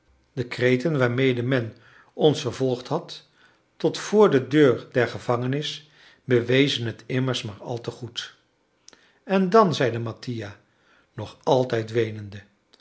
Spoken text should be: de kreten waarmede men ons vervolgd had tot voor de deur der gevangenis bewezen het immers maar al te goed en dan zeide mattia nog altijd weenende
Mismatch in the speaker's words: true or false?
false